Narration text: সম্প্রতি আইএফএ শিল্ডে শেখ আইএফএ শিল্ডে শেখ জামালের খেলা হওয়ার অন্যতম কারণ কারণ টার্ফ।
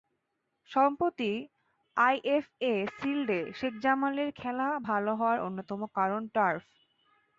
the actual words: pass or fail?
fail